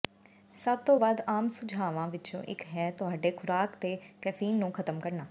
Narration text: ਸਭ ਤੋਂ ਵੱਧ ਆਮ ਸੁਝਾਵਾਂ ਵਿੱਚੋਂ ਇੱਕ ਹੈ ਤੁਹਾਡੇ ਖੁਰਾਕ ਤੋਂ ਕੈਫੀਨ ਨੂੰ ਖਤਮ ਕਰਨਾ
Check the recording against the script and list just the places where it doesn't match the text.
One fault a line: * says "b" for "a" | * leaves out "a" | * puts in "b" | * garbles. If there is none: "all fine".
all fine